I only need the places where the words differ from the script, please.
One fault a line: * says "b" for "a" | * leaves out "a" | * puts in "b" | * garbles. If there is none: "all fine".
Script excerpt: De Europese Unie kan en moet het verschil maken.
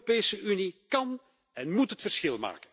all fine